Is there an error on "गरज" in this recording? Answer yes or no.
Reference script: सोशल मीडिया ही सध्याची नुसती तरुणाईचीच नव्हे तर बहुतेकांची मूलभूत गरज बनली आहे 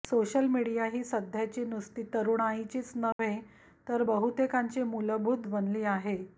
yes